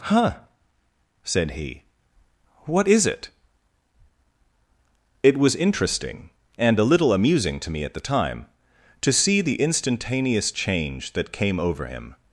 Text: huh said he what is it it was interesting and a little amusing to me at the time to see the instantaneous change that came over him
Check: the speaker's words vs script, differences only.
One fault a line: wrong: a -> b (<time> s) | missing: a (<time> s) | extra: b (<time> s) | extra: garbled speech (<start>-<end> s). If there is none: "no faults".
no faults